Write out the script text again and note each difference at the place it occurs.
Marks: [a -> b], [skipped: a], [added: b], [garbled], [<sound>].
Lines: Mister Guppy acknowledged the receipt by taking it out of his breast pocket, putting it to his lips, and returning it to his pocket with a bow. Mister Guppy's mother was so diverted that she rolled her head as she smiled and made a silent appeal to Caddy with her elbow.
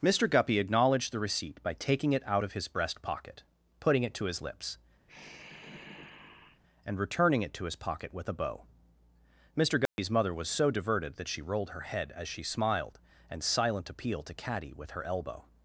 Mister Guppy acknowledged the receipt by taking it out of his breast pocket, putting it to his lips, [sigh] and returning it to his pocket with a bow. Mister Guppy's [dropout] mother was so diverted that she rolled her head as she smiled and [skipped: made a] silent appeal to Caddy with her elbow.